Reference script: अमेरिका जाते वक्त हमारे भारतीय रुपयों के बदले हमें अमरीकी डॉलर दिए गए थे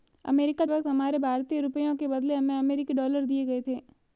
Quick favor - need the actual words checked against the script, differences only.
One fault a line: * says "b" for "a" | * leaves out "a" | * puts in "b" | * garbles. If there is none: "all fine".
* leaves out "जाते"